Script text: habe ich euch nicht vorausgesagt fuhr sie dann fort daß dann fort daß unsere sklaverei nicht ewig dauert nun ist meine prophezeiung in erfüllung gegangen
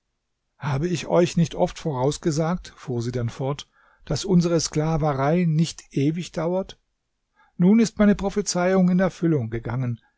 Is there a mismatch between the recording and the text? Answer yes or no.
yes